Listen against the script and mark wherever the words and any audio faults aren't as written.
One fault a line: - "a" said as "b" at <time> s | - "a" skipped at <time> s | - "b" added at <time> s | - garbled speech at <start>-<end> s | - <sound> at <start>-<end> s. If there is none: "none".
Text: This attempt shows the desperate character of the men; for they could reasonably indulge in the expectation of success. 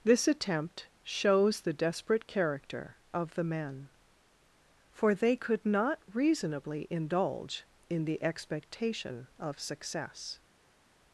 - "not" added at 5.6 s